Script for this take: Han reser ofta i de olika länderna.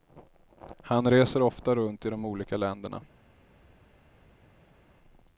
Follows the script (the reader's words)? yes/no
no